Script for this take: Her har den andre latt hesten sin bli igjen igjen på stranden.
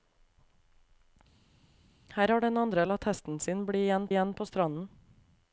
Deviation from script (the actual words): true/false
false